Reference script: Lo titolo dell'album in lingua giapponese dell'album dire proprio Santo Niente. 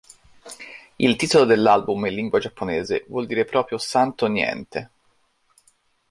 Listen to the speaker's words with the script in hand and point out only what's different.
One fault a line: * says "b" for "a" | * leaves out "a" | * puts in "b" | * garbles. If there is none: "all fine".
* says "Il" for "Lo"
* says "vuol" for "dell'album"